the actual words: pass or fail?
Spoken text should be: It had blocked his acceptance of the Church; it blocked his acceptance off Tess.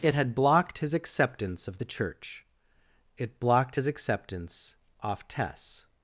pass